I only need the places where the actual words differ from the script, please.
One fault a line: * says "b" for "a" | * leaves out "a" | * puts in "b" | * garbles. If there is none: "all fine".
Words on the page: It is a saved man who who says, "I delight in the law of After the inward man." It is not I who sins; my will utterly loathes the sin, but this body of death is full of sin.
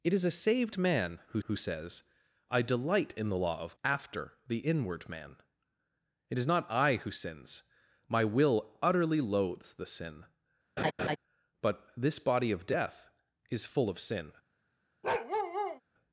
all fine